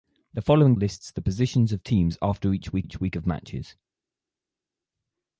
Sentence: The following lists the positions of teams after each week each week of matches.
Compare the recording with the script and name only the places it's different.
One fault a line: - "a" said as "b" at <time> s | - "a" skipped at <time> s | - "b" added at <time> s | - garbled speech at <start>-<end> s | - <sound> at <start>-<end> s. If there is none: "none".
none